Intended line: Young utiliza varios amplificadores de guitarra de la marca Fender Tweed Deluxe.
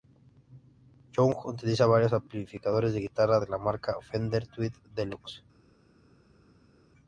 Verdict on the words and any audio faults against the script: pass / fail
pass